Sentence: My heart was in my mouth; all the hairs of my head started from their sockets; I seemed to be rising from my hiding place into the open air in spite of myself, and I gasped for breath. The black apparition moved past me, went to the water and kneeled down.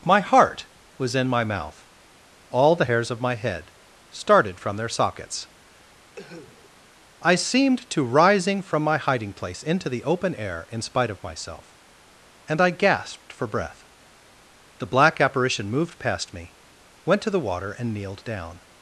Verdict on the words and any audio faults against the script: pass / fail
fail